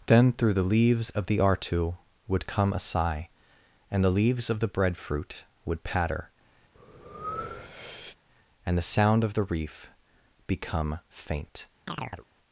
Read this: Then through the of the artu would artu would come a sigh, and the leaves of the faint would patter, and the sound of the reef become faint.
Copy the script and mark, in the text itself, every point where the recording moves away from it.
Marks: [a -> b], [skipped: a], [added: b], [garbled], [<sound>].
Then through the [added: leaves] of the artu would [skipped: artu would] come a sigh, and the leaves of the [faint -> breadfruit] would patter, [breath] and the sound of the reef become faint. [chirp]